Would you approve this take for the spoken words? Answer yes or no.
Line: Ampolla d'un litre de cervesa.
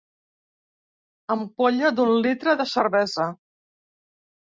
yes